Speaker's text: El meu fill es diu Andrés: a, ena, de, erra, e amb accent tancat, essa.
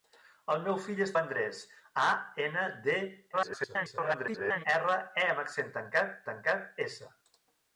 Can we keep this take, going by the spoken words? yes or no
no